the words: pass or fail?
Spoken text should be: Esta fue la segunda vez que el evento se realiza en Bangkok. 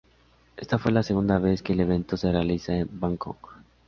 pass